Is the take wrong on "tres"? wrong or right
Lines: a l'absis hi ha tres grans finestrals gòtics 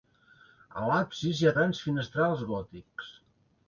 wrong